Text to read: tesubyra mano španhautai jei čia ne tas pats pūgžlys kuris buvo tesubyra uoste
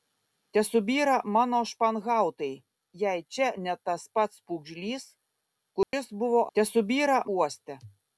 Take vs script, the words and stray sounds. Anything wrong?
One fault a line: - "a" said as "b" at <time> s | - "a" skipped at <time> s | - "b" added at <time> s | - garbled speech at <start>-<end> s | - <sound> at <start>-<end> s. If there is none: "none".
- dropout at 5.8-5.9 s